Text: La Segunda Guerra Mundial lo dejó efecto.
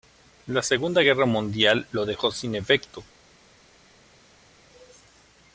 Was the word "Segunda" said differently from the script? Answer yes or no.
no